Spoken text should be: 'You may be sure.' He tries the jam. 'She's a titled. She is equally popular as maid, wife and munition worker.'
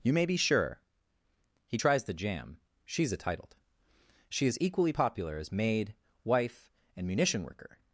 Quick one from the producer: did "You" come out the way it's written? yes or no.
yes